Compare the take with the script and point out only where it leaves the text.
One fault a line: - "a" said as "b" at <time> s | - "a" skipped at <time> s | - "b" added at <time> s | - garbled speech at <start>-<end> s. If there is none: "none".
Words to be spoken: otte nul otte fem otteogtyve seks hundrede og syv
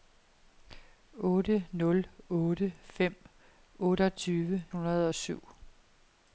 - "seks" skipped at 4.7 s